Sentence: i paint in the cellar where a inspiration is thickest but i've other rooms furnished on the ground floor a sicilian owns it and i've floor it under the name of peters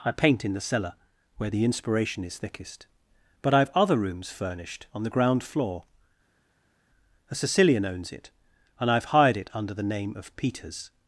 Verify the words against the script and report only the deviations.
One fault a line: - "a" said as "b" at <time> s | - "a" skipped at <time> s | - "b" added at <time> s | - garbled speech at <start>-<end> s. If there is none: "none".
- "a" said as "the" at 1.5 s
- "floor" said as "hired" at 9.1 s